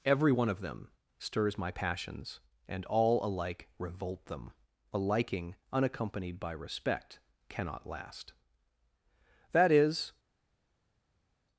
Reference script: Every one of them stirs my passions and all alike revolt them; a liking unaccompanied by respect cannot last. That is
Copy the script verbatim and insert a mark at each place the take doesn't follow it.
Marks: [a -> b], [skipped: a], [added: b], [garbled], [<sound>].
Every one of them stirs my passions and all alike revolt them; a liking unaccompanied by respect cannot last. That is